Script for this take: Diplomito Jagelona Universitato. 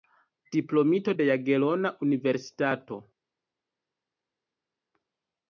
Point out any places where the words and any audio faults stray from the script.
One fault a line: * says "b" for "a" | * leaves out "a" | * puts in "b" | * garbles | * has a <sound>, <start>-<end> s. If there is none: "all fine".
* puts in "de"